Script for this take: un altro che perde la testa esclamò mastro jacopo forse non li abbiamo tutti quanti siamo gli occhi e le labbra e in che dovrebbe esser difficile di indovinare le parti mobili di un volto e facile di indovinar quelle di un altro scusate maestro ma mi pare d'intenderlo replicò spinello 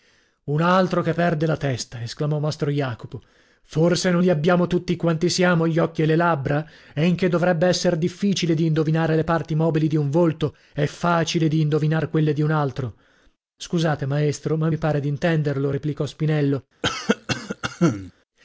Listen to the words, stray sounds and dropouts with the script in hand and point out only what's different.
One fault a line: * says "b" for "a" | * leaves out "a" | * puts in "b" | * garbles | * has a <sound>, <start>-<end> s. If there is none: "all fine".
* has a cough, 16.8-18.1 s